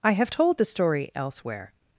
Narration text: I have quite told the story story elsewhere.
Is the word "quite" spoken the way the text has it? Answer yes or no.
no